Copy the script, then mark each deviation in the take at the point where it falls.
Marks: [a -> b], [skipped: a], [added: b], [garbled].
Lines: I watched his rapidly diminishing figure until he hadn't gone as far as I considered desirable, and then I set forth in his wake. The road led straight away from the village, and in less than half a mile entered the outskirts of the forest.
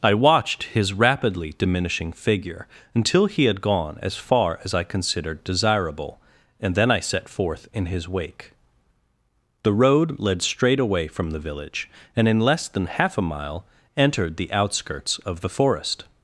I watched his rapidly diminishing figure until he [hadn't -> had] gone as far as I considered desirable, and then I set forth in his wake. The road led straight away from the village, and in less than half a mile entered the outskirts of the forest.